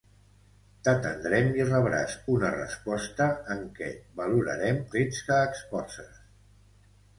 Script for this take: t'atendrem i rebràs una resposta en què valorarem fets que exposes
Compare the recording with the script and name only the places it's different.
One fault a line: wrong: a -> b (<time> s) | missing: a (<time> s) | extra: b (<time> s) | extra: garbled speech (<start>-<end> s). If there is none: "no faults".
no faults